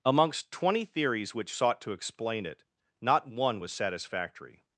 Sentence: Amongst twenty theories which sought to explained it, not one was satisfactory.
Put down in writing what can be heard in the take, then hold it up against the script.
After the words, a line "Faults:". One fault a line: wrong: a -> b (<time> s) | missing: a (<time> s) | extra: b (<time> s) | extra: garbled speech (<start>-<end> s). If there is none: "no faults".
Amongst twenty theories which sought to explain it, not one was satisfactory.
Faults:
wrong: explained -> explain (1.9 s)